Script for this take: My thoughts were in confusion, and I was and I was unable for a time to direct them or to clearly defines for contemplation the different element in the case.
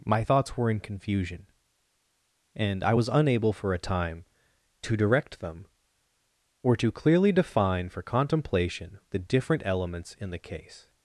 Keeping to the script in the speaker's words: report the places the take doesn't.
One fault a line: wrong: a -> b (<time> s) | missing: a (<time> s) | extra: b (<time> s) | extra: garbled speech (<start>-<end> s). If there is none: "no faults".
missing: and I was (3.1 s)
wrong: defines -> define (7.3 s)
wrong: element -> elements (9.6 s)